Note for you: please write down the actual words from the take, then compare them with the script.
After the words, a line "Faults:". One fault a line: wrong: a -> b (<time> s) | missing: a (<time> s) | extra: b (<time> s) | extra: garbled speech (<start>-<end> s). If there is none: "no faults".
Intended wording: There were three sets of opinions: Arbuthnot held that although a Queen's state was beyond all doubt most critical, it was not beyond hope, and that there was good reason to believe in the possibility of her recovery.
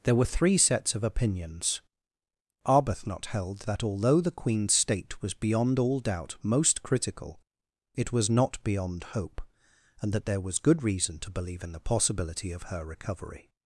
There were three sets of opinions: Arbuthnot held that although the Queen's state was beyond all doubt most critical, it was not beyond hope, and that there was good reason to believe in the possibility of her recovery.
Faults:
wrong: a -> the (4.2 s)